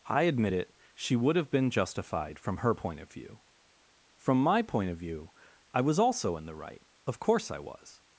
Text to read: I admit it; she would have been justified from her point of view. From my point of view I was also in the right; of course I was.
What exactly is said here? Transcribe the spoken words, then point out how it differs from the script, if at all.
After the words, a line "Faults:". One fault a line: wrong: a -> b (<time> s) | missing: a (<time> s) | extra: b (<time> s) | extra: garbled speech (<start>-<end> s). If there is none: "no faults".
I admit it; she would have been justified from her point of view. From my point of view I was also in the right; of course I was.
Faults:
no faults